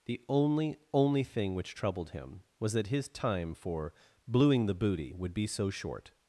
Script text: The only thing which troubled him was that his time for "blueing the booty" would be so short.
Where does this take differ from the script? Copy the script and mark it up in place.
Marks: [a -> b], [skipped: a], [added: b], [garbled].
The only [added: only] thing which troubled him was that his time for "blueing the booty" would be so short.